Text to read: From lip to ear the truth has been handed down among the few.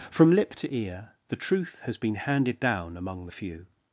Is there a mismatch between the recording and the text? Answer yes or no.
no